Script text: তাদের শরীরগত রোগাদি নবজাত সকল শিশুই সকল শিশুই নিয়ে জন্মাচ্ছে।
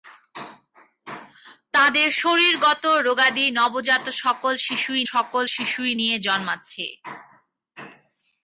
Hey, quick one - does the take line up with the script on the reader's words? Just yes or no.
yes